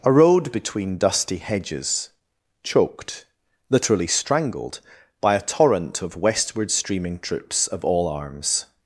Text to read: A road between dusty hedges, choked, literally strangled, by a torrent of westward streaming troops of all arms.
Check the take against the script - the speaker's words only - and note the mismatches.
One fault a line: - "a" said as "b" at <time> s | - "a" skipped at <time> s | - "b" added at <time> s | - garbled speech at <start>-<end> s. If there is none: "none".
none